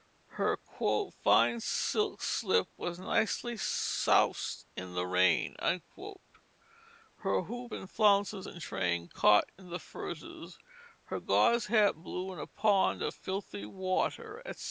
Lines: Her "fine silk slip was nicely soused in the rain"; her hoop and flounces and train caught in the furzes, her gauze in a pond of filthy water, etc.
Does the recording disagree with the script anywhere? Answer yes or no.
yes